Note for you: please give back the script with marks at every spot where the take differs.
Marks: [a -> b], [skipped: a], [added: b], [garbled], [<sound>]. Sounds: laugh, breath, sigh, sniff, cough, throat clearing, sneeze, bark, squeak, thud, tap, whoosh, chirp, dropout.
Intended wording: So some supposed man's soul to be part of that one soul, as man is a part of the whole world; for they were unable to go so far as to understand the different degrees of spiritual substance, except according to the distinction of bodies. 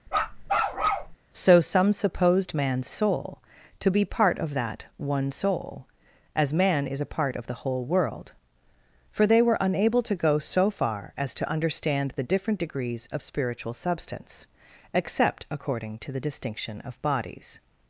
[bark] So some supposed man's soul to be part of that one soul, as man is a part of the whole world; for they were unable to go so far as to understand the different degrees of spiritual substance, except according to the distinction of bodies.